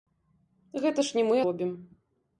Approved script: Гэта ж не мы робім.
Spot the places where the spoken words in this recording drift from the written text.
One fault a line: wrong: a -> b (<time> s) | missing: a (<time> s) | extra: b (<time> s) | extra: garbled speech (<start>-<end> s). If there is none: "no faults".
no faults